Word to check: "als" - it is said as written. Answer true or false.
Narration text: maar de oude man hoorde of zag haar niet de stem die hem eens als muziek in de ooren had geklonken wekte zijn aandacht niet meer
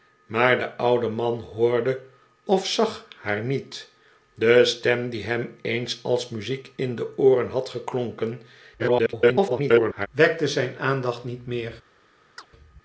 true